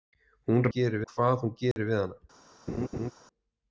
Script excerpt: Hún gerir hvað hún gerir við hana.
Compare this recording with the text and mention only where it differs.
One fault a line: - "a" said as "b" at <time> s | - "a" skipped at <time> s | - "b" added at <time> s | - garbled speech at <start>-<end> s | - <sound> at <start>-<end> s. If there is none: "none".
- dropout at 1.7-1.8 s
- laugh at 2.7-3.1 s